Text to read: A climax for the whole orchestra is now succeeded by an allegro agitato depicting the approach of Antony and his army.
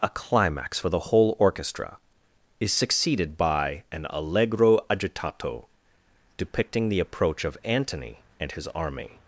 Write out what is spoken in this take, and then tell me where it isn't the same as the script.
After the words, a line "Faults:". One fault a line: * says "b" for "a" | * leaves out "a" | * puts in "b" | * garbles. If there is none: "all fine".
A climax for the whole orchestra is succeeded by an allegro agitato depicting the approach of Antony and his army.
Faults:
* leaves out "now"